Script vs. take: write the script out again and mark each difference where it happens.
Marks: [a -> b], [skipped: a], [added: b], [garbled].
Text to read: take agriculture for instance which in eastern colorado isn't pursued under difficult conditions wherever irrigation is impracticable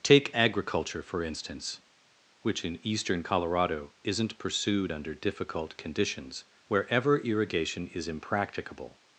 take agriculture for instance which in eastern colorado isn't pursued under difficult conditions wherever irrigation is impracticable